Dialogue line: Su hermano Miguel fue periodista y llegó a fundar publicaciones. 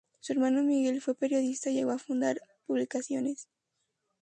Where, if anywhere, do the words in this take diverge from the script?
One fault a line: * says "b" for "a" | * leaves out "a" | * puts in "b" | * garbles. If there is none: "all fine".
all fine